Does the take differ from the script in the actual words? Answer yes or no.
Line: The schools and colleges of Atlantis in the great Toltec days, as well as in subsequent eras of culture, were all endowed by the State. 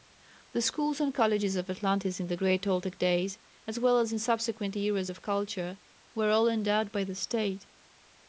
no